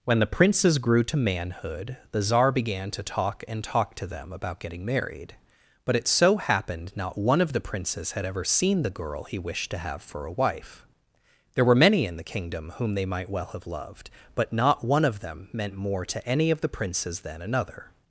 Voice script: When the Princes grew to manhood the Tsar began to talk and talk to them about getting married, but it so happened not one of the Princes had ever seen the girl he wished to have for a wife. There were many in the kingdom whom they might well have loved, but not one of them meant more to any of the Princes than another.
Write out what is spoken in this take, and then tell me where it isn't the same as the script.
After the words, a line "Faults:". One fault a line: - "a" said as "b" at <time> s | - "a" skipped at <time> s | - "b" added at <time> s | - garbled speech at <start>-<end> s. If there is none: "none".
When the Princes grew to manhood the Tsar began to talk and talk to them about getting married, but it so happened not one of the Princes had ever seen the girl he wished to have for a wife. There were many in the kingdom whom they might well have loved, but not one of them meant more to any of the Princes than another.
Faults:
none